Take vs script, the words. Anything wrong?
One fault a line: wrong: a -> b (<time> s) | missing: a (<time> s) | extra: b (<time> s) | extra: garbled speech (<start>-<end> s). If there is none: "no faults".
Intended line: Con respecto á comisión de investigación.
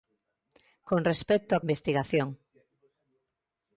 missing: comisión de (1.6 s)